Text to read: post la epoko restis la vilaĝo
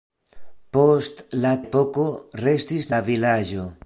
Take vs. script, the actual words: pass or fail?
pass